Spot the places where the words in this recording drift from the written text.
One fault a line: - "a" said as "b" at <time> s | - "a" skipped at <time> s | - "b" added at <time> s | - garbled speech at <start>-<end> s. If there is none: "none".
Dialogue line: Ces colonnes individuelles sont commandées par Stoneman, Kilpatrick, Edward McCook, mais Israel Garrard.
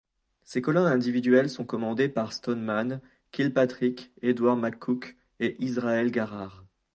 - "mais" said as "et" at 5.4 s